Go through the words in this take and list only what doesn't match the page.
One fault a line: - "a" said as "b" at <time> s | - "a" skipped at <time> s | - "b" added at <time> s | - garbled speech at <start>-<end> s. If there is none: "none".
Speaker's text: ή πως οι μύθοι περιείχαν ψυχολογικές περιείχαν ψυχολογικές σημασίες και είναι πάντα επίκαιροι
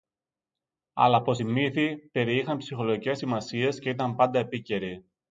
- "ή" said as "αλλά" at 0.9 s
- "περιείχαν ψυχολογικές" skipped at 3.2 s
- "είναι" said as "ήταν" at 3.9 s